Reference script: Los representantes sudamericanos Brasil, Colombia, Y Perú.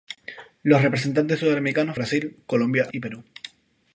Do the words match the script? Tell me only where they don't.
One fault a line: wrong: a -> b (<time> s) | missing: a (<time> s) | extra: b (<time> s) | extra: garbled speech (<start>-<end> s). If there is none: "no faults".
no faults